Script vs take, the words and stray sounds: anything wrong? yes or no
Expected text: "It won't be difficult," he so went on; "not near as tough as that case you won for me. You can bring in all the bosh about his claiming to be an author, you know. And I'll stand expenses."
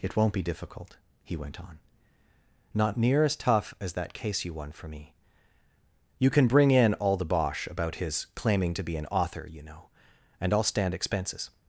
yes